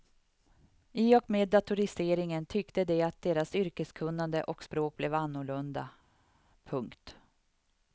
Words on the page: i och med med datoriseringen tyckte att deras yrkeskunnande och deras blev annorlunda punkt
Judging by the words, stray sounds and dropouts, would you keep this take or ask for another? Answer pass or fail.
fail